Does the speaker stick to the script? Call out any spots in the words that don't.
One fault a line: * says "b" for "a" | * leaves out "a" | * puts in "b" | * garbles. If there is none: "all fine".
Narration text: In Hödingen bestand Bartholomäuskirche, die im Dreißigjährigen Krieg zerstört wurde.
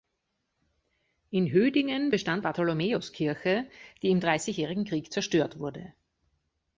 all fine